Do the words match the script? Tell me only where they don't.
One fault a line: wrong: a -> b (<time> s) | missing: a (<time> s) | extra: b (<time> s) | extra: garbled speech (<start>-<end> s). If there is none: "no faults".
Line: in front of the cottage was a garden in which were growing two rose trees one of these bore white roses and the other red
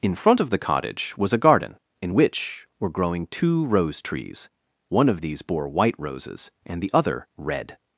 no faults